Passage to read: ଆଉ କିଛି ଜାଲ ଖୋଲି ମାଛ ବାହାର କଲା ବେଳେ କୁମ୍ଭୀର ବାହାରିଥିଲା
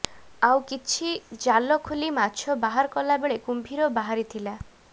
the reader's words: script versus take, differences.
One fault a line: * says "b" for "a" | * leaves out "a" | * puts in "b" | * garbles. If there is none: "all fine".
all fine